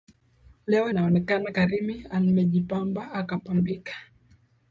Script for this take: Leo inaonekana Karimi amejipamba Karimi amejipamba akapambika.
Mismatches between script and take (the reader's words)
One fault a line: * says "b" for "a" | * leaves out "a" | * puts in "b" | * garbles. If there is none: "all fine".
* leaves out "Karimi amejipamba"